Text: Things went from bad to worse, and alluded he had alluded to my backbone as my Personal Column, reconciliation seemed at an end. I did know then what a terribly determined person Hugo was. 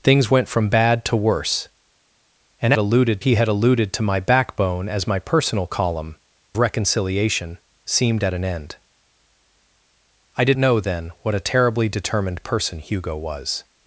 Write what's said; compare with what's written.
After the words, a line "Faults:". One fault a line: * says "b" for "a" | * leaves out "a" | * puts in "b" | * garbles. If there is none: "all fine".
Things went from bad to worse, and alluded he had alluded to my backbone as my Personal Column, reconciliation seemed at an end. I did know then what a terribly determined person Hugo was.
Faults:
all fine